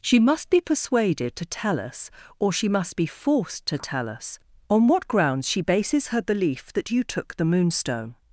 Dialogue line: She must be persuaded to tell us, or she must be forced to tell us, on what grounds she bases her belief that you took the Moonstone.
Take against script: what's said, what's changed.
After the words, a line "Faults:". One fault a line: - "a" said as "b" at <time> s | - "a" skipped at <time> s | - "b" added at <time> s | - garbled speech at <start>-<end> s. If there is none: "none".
She must be persuaded to tell us, or she must be forced to tell us, on what grounds she bases her belief that you took the Moonstone.
Faults:
none